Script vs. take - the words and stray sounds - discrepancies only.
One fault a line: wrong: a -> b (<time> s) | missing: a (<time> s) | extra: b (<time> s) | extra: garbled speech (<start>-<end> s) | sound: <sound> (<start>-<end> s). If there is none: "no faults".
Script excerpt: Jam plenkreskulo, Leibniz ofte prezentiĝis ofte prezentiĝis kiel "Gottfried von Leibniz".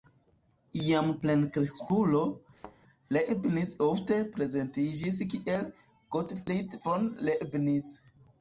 sound: thud (2.6-2.8 s)
missing: ofte prezentiĝis (5.2 s)